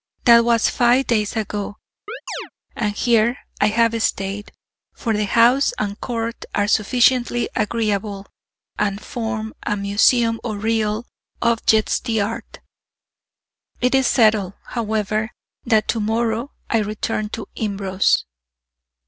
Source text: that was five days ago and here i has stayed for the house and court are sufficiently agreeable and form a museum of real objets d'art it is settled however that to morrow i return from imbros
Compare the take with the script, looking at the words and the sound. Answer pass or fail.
fail